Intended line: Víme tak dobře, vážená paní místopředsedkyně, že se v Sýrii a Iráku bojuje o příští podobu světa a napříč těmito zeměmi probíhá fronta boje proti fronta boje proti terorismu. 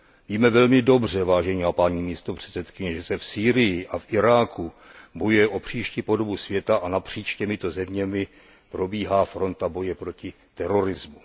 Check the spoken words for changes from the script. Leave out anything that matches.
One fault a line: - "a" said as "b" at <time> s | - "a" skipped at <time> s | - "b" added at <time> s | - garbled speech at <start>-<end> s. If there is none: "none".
- "tak" said as "velmi" at 0.5 s
- "v" added at 4.0 s
- "fronta boje proti" skipped at 10.3 s